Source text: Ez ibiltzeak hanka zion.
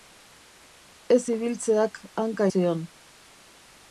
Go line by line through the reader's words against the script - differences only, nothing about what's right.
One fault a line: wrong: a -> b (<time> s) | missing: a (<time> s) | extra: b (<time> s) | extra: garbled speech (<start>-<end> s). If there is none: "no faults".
no faults